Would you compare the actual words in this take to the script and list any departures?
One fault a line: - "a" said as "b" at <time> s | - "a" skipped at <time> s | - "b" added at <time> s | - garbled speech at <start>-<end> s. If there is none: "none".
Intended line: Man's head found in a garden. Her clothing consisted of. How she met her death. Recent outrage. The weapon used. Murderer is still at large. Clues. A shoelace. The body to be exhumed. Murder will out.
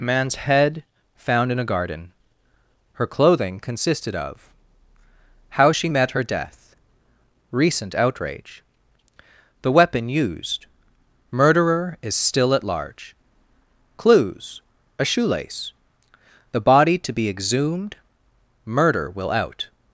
none